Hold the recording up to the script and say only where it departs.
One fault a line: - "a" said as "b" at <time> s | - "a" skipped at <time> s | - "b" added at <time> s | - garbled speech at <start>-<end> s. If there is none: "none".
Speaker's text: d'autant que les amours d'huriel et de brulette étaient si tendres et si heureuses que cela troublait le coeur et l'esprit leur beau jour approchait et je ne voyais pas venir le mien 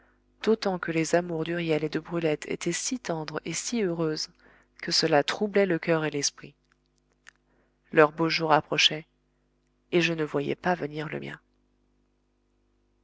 none